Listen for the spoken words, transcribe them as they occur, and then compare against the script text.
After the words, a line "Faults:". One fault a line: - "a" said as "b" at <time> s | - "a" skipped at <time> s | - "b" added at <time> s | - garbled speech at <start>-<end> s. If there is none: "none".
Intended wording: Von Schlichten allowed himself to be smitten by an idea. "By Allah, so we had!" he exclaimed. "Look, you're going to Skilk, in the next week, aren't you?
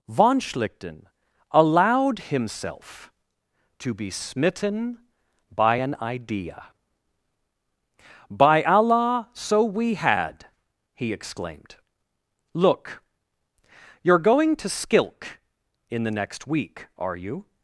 Von Schlichten allowed himself to be smitten by an idea. "By Allah, so we had!" he exclaimed. "Look, you're going to Skilk, in the next week, are you?
Faults:
- "aren't" said as "are" at 17.0 s